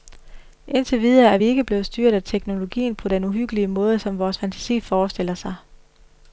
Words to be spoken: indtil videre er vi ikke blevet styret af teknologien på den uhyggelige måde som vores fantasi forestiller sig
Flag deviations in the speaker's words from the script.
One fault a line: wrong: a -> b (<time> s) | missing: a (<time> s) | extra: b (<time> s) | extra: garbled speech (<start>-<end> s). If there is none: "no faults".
no faults